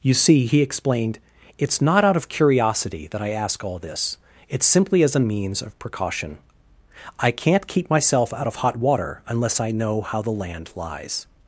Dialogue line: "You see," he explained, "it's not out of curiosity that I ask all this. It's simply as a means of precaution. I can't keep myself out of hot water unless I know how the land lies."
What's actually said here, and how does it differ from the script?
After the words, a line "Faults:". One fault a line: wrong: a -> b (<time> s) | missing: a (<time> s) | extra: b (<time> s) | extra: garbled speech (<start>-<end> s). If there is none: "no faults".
"You see," he explained, "it's not out of curiosity that I ask all this. It's simply as a means of precaution. I can't keep myself out of hot water unless I know how the land lies."
Faults:
no faults